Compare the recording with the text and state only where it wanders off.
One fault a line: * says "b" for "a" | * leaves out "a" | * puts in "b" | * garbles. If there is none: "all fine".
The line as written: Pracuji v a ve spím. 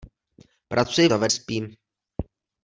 all fine